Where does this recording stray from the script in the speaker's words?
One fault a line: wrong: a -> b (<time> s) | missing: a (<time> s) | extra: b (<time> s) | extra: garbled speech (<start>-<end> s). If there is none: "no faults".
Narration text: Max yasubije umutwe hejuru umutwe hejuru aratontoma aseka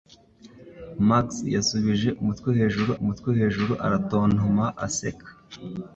no faults